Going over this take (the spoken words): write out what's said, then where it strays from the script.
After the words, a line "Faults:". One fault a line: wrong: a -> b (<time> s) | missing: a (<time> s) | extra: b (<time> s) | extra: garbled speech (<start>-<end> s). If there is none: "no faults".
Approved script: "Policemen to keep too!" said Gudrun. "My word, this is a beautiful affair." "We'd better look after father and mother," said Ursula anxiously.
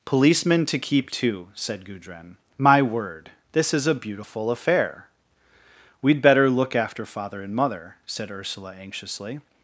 "Policemen to keep too!" said Gudrun. "My word, this is a beautiful affair." "We'd better look after father and mother," said Ursula anxiously.
Faults:
no faults